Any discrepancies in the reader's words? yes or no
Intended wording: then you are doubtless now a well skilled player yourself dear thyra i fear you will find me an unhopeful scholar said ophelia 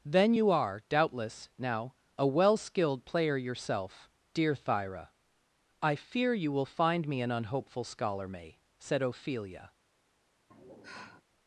yes